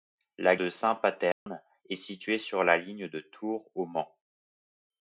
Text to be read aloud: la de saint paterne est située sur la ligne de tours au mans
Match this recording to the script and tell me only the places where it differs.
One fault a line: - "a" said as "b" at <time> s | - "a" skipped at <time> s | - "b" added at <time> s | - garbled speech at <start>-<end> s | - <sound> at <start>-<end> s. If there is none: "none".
- dropout at 1.3-1.5 s